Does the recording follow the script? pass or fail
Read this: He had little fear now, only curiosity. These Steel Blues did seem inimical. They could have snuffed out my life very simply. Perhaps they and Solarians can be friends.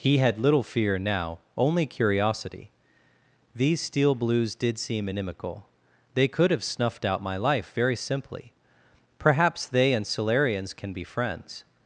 pass